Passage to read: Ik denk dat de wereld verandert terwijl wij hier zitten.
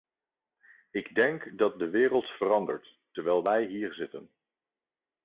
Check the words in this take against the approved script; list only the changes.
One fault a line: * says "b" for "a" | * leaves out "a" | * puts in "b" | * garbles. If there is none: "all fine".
all fine